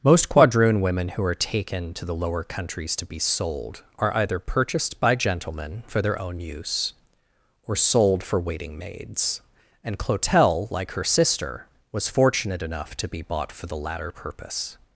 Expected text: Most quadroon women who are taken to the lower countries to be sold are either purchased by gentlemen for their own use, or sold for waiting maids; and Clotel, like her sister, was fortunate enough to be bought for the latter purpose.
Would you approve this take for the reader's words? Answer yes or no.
yes